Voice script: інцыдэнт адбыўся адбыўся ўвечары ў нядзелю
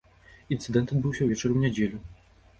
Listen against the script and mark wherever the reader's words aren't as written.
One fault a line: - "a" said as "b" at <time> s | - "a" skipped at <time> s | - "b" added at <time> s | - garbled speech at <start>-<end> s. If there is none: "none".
- "адбыўся" skipped at 1.2 s